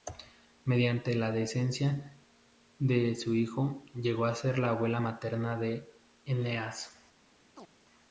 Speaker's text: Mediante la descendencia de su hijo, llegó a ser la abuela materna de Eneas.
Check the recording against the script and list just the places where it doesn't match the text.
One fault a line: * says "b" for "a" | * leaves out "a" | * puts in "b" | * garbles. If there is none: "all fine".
all fine